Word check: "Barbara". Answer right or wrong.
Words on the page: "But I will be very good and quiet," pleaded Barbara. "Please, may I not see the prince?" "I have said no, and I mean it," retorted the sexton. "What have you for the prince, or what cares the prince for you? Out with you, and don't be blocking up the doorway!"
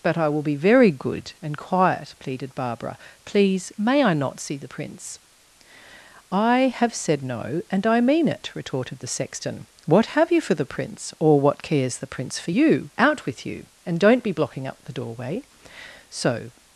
right